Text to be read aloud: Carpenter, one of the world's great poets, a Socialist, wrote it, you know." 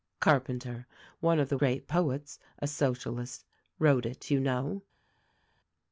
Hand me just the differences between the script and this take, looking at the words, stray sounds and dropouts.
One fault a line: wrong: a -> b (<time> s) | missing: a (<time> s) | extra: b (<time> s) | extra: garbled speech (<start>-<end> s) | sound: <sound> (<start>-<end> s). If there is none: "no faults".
missing: world's (1.6 s)